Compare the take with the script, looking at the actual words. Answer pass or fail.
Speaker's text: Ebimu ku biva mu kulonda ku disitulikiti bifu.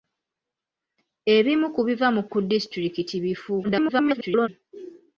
fail